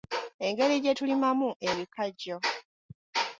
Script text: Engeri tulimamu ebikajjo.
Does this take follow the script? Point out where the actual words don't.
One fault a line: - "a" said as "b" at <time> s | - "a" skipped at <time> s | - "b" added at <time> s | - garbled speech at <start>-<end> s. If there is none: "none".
- "gye" added at 0.8 s